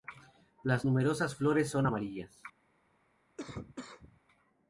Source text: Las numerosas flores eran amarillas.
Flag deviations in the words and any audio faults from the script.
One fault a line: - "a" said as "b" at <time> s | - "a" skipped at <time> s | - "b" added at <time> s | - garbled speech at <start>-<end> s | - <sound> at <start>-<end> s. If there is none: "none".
- "eran" said as "son" at 1.7 s
- cough at 3.4-4.2 s